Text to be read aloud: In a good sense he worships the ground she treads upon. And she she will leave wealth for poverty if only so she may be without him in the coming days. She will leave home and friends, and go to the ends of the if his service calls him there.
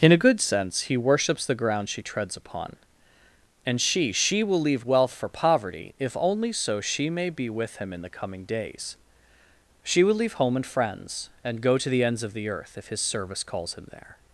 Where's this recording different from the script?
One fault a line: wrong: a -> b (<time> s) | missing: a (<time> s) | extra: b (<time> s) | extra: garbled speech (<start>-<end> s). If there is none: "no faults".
wrong: without -> with (7.5 s)
extra: earth (12.5 s)